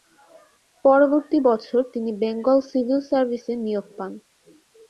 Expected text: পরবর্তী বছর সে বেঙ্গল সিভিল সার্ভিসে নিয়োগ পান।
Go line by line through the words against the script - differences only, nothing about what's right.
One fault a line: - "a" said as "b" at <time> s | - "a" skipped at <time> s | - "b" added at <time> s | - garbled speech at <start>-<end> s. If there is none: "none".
- "সে" said as "তিনি" at 1.9 s